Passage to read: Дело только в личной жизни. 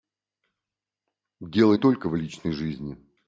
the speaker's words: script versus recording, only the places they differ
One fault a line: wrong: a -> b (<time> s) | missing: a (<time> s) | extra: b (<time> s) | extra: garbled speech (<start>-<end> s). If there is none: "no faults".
no faults